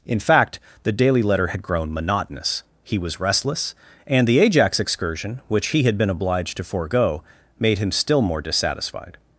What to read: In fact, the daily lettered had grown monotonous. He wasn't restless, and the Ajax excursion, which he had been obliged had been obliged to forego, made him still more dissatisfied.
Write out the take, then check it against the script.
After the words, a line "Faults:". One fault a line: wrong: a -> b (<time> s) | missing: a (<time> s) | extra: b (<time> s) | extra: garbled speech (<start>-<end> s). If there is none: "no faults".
In fact, the daily letter had grown monotonous. He was restless, and the Ajax excursion, which he had been obliged to forego, made him still more dissatisfied.
Faults:
wrong: lettered -> letter (1.2 s)
wrong: wasn't -> was (3.0 s)
missing: had been obliged (6.6 s)